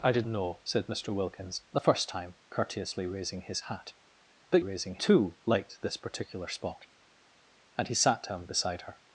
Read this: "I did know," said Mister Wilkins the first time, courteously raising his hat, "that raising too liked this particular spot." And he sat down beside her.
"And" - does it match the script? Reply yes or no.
yes